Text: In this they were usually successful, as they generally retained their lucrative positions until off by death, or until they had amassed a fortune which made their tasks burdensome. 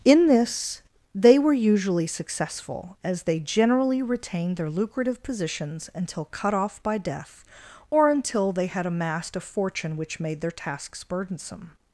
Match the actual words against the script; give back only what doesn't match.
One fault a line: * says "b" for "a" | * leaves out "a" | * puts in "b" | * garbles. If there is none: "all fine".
* puts in "cut"